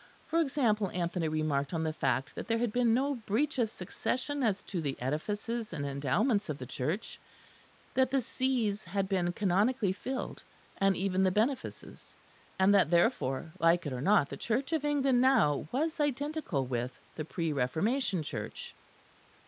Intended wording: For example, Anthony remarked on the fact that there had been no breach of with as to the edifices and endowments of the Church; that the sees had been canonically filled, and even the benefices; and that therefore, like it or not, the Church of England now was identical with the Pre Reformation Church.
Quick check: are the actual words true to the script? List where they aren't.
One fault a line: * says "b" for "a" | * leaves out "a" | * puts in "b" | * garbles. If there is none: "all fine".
* says "succession" for "with"